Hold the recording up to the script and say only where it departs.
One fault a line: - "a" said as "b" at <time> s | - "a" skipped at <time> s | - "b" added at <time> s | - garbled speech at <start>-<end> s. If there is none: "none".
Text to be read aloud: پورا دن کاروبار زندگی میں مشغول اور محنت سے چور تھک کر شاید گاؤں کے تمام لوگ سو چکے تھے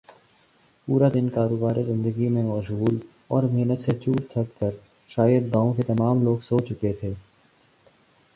none